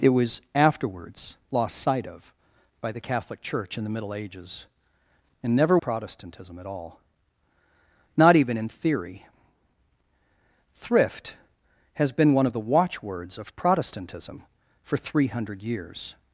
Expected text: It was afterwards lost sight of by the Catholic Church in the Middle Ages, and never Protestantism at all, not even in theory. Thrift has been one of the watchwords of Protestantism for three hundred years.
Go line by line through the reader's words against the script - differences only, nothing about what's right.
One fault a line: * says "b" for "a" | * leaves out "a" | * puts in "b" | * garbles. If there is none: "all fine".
all fine